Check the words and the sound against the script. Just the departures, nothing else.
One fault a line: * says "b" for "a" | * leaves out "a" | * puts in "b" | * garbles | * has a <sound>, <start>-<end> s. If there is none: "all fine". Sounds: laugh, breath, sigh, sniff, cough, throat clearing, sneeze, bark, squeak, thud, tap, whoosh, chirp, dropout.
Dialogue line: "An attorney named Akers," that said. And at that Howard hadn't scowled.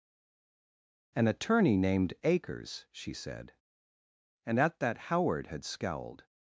* says "she" for "that"
* says "had" for "hadn't"